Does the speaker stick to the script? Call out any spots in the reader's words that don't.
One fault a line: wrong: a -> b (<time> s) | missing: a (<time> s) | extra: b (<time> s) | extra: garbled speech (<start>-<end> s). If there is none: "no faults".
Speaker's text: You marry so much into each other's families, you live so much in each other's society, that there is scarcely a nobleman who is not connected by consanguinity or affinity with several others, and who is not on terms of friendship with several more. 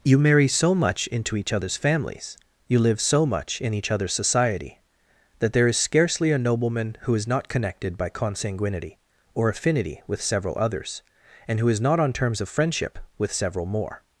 no faults